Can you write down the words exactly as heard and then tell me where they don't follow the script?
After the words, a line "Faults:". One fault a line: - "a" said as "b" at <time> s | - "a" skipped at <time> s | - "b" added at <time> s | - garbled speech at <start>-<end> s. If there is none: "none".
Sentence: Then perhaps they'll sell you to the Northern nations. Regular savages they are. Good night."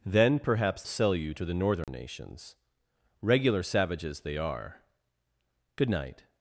Then perhaps sell you to the Northern nations. Regular savages they are. Good night."
Faults:
- "they'll" skipped at 0.8 s